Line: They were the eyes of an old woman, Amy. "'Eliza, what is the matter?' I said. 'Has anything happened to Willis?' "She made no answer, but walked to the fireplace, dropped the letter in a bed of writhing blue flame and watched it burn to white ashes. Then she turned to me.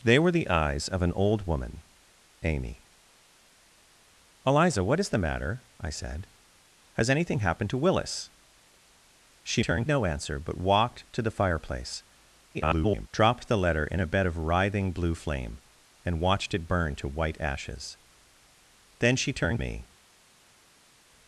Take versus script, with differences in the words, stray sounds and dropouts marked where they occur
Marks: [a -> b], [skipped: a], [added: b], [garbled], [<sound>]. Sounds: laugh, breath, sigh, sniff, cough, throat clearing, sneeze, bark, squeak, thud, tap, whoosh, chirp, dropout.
They were the eyes of an old woman, Amy. "'Eliza, what is the matter?' I said. 'Has anything happened to Willis?' "She [made -> turned] no answer, but walked to the fireplace, [garbled] dropped the letter in a bed of writhing blue flame and watched it burn to white ashes. Then she turned [skipped: to] me.